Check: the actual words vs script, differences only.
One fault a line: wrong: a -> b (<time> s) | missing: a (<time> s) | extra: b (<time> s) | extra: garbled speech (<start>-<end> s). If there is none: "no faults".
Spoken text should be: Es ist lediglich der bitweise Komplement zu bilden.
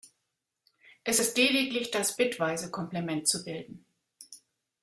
wrong: der -> das (1.9 s)